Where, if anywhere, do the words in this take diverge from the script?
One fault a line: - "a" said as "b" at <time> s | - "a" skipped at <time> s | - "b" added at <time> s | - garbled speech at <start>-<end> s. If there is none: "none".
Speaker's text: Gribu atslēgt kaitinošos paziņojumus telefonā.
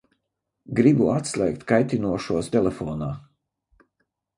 - "paziņojumus" skipped at 2.5 s